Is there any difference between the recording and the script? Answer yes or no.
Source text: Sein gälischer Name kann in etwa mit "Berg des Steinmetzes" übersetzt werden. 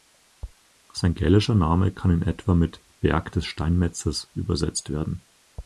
no